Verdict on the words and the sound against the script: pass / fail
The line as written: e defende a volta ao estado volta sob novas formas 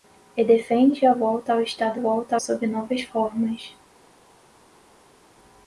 pass